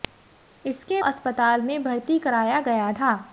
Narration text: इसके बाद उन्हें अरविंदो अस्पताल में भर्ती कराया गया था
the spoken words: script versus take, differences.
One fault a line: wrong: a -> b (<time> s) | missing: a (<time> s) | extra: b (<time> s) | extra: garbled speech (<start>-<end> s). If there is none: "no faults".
missing: बाद उन्हें अरविंदो (1.0 s)